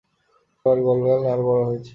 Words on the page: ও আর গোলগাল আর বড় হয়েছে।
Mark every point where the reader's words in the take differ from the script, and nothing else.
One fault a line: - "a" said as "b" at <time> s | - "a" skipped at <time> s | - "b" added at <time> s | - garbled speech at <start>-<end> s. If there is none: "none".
none